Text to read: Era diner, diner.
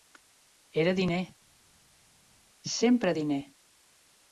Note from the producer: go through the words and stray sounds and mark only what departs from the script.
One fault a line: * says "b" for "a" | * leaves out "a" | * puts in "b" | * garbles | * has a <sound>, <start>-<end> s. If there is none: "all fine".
* puts in "sempre"